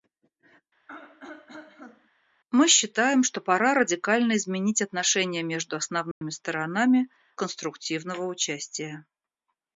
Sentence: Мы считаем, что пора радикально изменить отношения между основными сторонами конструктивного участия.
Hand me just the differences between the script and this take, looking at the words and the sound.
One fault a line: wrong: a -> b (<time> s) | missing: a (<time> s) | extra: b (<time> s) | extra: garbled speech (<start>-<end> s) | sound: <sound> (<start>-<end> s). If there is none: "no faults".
sound: throat clearing (0.9-2.1 s)
sound: dropout (6.1-6.2 s)